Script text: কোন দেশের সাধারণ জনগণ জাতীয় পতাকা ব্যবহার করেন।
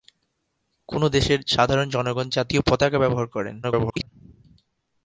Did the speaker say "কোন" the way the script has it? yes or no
yes